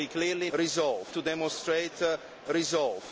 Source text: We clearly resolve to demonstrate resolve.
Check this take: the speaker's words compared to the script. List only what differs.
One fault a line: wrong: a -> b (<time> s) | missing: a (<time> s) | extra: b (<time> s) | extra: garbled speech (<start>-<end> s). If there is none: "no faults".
no faults